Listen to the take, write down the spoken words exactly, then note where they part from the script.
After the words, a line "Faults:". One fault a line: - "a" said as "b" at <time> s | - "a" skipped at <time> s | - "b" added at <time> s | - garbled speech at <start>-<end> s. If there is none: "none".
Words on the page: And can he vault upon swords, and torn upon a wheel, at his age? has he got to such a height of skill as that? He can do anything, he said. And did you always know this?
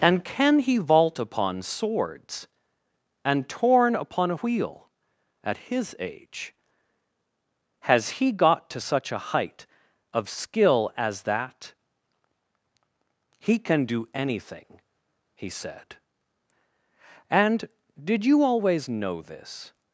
And can he vault upon swords, and torn upon a wheel, at his age? has he got to such a height of skill as that? He can do anything, he said. And did you always know this?
Faults:
none